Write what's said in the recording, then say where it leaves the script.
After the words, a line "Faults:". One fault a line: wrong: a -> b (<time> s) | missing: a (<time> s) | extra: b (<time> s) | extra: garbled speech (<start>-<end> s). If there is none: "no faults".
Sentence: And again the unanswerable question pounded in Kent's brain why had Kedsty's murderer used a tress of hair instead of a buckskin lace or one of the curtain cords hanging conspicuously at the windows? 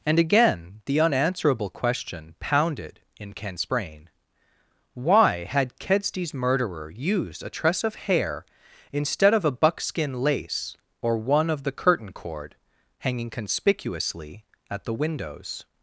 And again the unanswerable question pounded in Kent's brain why had Kedsty's murderer used a tress of hair instead of a buckskin lace or one of the curtain cord hanging conspicuously at the windows?
Faults:
wrong: cords -> cord (12.1 s)